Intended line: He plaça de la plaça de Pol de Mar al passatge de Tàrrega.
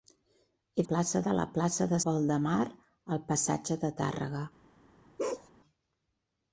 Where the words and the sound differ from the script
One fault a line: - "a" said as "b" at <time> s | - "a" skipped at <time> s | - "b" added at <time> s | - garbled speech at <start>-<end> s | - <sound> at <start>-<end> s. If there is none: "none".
- bark at 5.2-5.5 s